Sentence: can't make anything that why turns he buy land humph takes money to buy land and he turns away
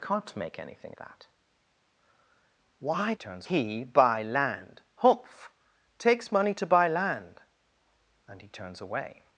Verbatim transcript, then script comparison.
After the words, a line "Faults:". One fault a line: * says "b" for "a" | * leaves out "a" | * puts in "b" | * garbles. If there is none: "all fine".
can't make anything that why turns he buy land humph takes money to buy land and he turns away
Faults:
all fine